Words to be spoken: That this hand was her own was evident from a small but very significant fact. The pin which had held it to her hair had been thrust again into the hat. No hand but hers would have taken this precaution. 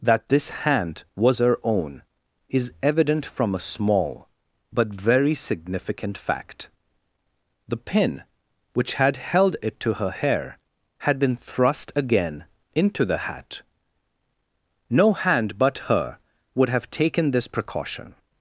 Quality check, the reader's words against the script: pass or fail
fail